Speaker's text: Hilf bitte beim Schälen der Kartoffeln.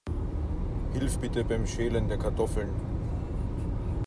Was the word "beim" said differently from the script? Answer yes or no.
no